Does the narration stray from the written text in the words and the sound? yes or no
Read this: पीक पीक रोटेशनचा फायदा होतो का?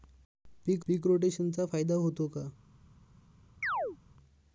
yes